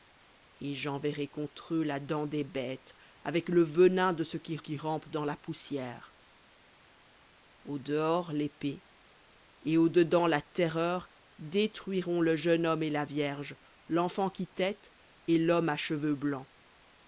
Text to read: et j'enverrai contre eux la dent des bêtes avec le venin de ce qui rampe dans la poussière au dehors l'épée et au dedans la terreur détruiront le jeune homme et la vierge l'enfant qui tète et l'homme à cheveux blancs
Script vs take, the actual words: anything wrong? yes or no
yes